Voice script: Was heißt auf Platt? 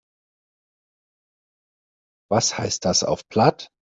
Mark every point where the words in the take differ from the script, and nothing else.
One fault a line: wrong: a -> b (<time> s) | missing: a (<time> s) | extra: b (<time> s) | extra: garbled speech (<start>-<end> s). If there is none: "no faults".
extra: das (2.9 s)